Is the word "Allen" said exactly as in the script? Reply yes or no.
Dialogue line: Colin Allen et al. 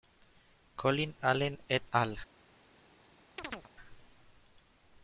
yes